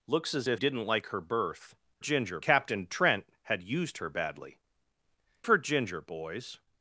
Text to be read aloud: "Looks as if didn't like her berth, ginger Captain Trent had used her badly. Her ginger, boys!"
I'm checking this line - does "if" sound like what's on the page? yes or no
yes